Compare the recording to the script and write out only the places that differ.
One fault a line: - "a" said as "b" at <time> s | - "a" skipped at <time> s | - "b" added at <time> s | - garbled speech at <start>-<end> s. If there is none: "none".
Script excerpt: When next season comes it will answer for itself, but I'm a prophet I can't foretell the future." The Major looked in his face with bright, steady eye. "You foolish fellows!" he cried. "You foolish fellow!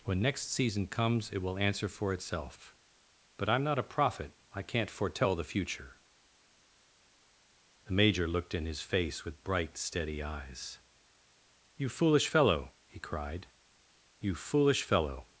- "not" added at 3.6 s
- "eye" said as "eyes" at 10.2 s
- "fellows" said as "fellow" at 12.3 s